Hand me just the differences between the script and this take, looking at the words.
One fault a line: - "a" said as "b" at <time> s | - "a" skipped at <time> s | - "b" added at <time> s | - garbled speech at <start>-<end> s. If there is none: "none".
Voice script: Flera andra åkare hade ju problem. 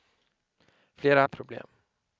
- "andra åkare hade" skipped at 1.2 s